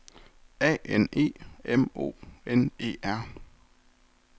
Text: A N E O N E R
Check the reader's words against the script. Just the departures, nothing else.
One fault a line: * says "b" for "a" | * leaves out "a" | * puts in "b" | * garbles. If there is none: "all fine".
* puts in "M"